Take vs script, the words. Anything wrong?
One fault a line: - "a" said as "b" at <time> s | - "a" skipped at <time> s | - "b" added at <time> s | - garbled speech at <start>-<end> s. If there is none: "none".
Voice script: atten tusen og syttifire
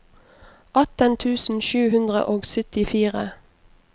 - "sju hundre" added at 1.7 s